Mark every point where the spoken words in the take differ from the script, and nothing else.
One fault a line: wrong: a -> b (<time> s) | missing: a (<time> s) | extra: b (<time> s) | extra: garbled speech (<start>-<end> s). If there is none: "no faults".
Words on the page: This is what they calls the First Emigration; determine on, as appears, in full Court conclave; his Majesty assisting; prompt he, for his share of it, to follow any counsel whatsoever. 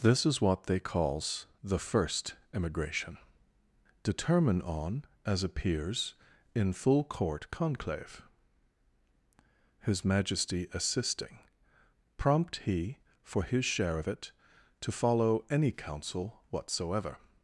no faults